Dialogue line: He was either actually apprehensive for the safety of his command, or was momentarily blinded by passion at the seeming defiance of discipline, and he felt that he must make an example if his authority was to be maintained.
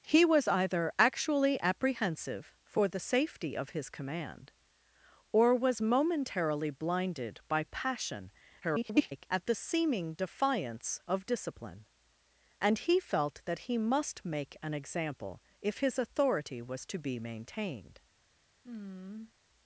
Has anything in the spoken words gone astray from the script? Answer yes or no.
yes